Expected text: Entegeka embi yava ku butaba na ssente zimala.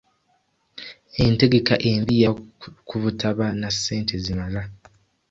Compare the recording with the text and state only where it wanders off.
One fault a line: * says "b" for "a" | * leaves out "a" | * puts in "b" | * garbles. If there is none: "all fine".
all fine